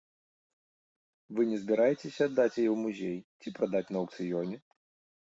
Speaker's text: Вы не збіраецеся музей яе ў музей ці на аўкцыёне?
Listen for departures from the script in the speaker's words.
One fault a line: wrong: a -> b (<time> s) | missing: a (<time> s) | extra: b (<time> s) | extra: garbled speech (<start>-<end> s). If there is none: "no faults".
wrong: музей -> аддаць (2.3 s)
extra: прадаць (3.6 s)